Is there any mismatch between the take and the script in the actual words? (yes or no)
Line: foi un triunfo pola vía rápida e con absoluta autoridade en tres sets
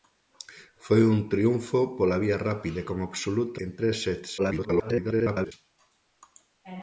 yes